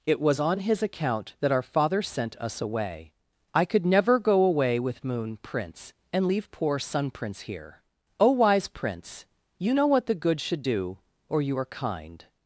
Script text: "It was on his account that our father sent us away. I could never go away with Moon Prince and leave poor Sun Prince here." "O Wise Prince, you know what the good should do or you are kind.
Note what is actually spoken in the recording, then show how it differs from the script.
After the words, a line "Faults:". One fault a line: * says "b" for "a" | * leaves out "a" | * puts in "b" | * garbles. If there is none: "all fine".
"It was on his account that our father sent us away. I could never go away with Moon Prince and leave poor Sun Prince here." "O Wise Prince, you know what the good should do or you are kind.
Faults:
all fine